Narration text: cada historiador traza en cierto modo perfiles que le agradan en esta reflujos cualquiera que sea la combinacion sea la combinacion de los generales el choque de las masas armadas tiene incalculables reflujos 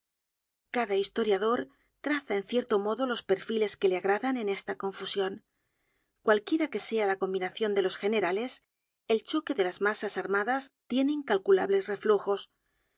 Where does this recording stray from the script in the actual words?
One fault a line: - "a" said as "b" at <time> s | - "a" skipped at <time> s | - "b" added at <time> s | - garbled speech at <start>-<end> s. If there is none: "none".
- "los" added at 3.0 s
- "reflujos" said as "confusion" at 4.8 s
- "sea la combinacion" skipped at 7.7 s